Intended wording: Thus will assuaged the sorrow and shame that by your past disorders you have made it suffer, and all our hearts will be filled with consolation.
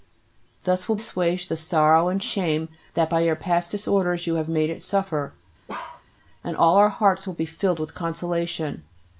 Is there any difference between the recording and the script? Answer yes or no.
no